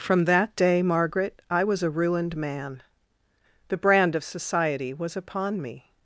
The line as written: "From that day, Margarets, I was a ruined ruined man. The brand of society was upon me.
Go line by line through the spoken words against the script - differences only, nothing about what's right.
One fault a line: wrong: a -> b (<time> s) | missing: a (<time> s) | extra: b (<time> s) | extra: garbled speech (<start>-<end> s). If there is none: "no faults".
wrong: Margarets -> Margaret (0.8 s)
missing: ruined (2.4 s)